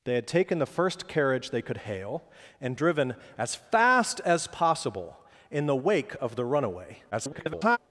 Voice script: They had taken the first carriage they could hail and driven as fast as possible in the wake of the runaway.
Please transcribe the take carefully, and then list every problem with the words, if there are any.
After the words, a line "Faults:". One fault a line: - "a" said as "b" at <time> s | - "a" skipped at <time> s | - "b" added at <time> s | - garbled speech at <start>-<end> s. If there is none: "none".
They had taken the first carriage they could hail and driven as fast as possible in the wake of the runaway. [garbled]
Faults:
- garbled speech at 7.1-7.8 s